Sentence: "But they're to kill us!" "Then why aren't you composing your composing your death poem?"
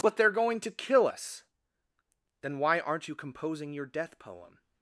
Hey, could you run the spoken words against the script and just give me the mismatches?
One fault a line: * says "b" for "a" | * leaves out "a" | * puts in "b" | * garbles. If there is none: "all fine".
* puts in "going"
* leaves out "composing your"